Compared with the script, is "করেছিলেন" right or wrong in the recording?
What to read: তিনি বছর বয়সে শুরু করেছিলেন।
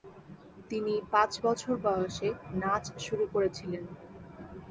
right